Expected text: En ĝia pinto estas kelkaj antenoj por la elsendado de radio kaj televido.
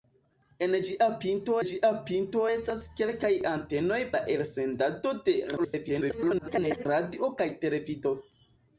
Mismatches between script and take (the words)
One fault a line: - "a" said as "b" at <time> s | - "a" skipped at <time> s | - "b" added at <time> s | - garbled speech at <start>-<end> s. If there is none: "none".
- "ĝia pinto" added at 1.7 s
- "por" skipped at 4.0 s
- garbled speech at 5.6-6.9 s